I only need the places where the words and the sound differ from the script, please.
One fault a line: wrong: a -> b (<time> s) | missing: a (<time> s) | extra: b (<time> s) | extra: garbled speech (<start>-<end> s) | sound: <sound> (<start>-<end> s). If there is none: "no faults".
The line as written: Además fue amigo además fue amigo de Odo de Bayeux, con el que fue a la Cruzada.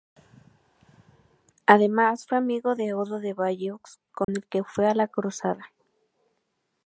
missing: además fue amigo (2.7 s)
sound: dropout (4.2-4.3 s)